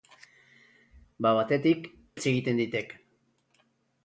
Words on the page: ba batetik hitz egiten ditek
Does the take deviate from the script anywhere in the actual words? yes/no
no